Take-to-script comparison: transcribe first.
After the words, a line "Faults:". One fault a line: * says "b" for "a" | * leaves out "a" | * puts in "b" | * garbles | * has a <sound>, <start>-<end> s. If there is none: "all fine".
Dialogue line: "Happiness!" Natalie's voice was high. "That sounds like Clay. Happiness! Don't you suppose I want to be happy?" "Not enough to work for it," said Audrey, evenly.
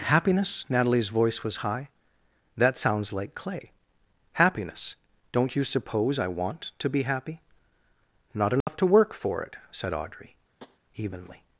"Happiness!" Natalie's voice was high. "That sounds like Clay. Happiness! Don't you suppose I want to be happy?" "Not enough to work for it," said Audrey, evenly.
Faults:
* has a dropout, 8.6-8.7 s
* has a tap, 10.6-10.8 s